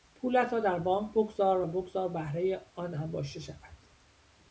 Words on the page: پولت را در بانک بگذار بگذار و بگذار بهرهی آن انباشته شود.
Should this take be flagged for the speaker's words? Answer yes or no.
yes